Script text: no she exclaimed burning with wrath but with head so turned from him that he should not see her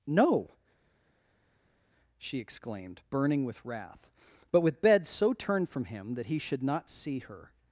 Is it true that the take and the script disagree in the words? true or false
true